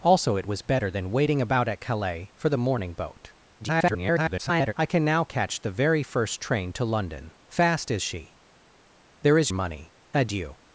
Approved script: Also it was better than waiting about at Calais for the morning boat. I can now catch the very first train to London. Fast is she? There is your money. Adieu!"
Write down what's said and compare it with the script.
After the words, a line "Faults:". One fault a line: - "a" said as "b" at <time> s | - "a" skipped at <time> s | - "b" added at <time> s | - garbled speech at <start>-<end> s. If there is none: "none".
Also it was better than waiting about at Calais for the morning boat. [garbled] I can now catch the very first train to London. Fast is she? There is money. Adieu!"
Faults:
- garbled speech at 3.6-4.7 s
- "your" skipped at 9.5 s